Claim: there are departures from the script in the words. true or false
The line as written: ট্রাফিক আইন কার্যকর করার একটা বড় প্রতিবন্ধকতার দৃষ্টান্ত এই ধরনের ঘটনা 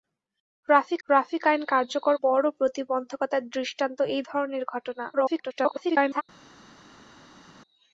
true